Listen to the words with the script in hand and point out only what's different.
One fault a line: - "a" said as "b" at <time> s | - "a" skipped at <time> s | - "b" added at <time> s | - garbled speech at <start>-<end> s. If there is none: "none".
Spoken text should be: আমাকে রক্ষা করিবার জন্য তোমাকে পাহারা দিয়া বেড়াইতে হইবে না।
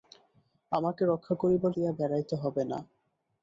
- "জন্য তোমাকে পাহারা" skipped at 1.7 s